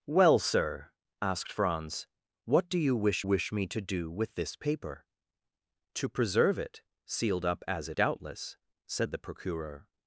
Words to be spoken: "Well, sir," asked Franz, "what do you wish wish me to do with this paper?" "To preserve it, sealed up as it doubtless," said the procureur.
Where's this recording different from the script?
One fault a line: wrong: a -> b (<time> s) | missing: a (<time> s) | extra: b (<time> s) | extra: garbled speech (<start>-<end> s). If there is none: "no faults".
no faults